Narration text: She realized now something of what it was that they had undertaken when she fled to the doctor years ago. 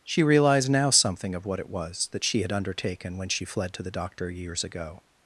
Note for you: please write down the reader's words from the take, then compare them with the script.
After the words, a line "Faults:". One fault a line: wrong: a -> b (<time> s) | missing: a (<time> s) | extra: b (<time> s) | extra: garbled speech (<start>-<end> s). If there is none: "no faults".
She realized now something of what it was that she had undertaken when she fled to the doctor years ago.
Faults:
wrong: they -> she (2.2 s)